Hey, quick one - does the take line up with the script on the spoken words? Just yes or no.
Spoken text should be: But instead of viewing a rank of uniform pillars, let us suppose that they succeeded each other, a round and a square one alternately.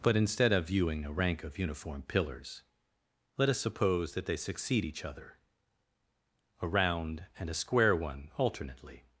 no